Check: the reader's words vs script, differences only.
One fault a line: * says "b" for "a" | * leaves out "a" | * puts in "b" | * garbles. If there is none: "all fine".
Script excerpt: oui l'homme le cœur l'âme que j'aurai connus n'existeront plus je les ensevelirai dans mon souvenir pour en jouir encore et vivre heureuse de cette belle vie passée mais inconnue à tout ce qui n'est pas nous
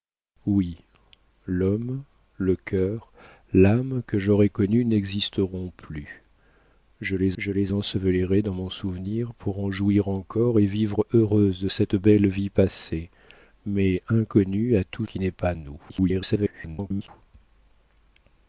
* puts in "je les"
* leaves out "ce"
* garbles